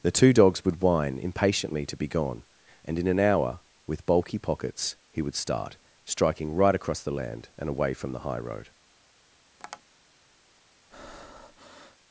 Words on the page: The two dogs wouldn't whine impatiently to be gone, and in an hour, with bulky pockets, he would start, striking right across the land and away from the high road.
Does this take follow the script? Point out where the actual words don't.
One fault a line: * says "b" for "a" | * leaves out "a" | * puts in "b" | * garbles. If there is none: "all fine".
* says "would" for "wouldn't"